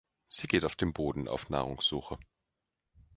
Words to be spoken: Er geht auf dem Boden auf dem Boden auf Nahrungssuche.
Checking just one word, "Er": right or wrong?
wrong